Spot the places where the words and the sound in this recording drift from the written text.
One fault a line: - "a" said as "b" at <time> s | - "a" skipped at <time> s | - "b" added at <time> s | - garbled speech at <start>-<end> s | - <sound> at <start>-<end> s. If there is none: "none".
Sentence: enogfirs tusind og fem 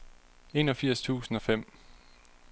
none